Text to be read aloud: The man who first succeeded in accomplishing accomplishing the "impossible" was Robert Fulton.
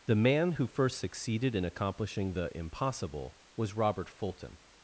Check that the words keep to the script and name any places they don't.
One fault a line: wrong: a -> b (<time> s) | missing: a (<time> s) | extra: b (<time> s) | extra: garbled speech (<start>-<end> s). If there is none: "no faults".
missing: accomplishing (2.3 s)